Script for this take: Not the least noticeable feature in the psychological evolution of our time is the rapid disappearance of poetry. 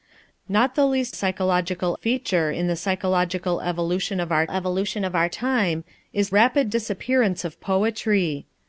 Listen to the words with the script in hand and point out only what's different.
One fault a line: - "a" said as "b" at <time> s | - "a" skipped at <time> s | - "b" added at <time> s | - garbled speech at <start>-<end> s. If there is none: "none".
- "noticeable" said as "psychological" at 1.1 s
- "evolution of our" added at 4.5 s
- "the" skipped at 6.3 s